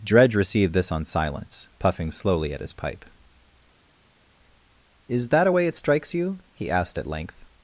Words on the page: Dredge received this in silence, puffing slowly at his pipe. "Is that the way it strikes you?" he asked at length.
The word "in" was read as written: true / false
false